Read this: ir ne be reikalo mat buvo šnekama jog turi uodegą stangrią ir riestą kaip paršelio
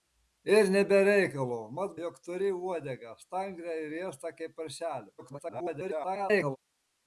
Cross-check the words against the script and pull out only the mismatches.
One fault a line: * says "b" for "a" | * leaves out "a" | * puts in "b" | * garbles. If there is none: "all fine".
* leaves out "buvo šnekama"
* garbles